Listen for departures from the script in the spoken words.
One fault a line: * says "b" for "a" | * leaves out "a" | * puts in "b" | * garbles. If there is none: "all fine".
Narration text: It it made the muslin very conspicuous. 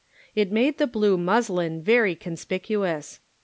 * leaves out "it"
* puts in "blue"